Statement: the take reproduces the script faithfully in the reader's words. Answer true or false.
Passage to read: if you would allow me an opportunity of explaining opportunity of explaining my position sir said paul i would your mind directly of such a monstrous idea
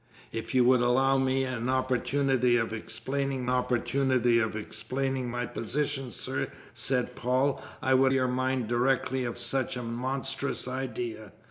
true